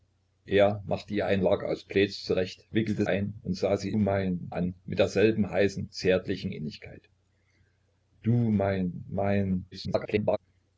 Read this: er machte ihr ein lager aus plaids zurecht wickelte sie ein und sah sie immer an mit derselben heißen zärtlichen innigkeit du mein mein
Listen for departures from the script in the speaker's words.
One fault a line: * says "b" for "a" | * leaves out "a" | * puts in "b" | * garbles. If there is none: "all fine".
* leaves out "sie"
* says "mein" for "immer"
* garbles